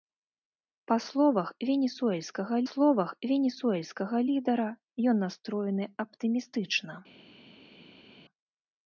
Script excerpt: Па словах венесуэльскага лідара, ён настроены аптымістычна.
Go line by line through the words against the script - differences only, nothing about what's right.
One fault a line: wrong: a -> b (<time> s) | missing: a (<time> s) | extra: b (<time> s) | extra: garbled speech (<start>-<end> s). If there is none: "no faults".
extra: словах венесуэльскага (2.7 s)